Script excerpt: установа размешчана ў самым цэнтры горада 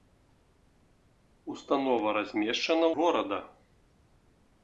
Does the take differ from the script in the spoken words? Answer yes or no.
yes